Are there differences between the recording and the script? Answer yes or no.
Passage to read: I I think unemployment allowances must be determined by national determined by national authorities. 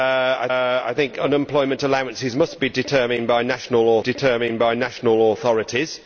no